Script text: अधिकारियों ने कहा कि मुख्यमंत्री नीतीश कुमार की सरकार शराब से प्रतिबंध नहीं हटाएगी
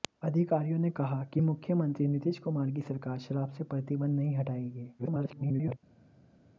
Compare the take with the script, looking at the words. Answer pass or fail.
fail